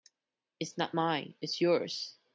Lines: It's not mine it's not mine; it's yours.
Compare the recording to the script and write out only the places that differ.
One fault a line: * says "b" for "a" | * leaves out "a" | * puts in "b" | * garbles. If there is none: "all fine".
* leaves out "not mine it's"